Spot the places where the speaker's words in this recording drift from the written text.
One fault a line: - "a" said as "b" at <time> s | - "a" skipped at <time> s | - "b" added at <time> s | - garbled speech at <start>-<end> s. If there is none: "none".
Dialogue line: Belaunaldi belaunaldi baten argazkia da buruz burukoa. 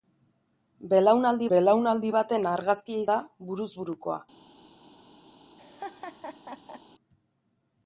none